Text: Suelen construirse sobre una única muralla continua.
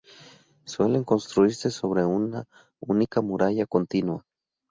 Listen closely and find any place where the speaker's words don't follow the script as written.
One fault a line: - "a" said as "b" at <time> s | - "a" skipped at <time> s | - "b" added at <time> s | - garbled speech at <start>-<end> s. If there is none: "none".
none